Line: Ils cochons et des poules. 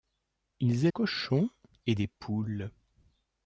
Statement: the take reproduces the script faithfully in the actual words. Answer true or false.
true